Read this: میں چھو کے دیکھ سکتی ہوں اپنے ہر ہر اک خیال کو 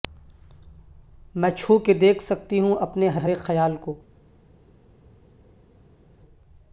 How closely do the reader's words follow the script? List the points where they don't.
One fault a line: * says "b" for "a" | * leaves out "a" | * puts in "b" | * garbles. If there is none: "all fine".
all fine